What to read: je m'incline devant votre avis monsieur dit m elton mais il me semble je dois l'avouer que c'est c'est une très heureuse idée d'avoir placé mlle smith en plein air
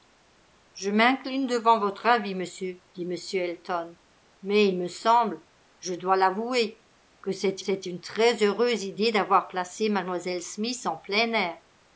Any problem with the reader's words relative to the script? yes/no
no